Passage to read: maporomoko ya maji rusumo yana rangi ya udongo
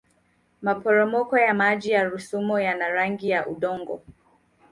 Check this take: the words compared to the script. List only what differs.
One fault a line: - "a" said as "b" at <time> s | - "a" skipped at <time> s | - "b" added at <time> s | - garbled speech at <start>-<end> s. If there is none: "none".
- "ya" added at 1.9 s